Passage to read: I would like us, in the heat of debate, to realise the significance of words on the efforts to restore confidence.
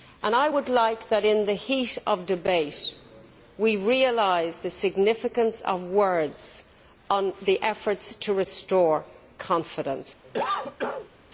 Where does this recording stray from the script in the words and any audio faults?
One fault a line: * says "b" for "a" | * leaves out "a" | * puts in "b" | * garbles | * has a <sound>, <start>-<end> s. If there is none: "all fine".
* has a cough, 10.2-11.1 s